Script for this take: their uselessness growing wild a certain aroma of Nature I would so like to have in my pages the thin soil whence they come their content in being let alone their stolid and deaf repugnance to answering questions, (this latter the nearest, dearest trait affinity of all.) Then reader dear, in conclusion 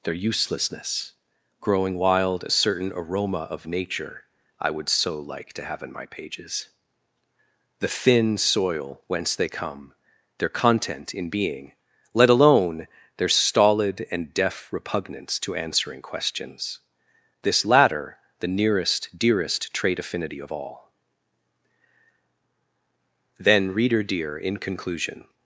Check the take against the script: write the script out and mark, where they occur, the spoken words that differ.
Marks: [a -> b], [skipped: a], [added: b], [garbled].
their uselessness growing wild a certain aroma of Nature I would so like to have in my pages the thin soil whence they come their content in being let alone their stolid and deaf repugnance to answering questions, (this latter the nearest, dearest trait affinity of all.) Then reader dear, in conclusion